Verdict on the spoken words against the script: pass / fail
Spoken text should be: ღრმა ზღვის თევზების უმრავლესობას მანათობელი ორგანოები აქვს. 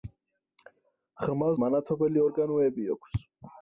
fail